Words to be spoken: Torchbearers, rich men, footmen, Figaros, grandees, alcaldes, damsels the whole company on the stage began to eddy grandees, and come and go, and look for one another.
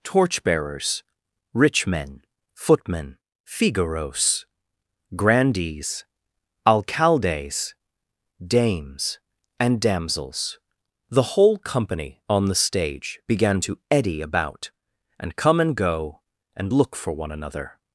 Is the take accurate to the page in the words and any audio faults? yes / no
no